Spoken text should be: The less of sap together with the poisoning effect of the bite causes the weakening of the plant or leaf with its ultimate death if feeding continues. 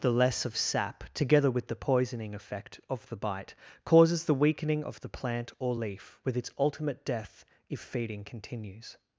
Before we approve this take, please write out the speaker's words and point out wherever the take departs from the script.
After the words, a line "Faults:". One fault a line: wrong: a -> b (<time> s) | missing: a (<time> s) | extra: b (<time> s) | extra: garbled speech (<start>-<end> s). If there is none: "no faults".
The less of sap together with the poisoning effect of the bite causes the weakening of the plant or leaf with its ultimate death if feeding continues.
Faults:
no faults